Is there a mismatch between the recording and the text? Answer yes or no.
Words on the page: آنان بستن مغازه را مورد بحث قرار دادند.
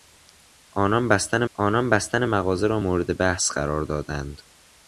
yes